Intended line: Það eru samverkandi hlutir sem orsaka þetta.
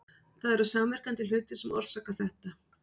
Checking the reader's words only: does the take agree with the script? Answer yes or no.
yes